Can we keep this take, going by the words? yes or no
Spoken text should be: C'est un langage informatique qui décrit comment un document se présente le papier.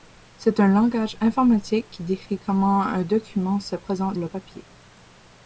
yes